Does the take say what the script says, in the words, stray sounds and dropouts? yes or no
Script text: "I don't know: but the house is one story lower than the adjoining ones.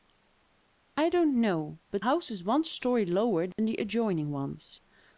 no